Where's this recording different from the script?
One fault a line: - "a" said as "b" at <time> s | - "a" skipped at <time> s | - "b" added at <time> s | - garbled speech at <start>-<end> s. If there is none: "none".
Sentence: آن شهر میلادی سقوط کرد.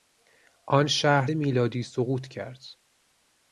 none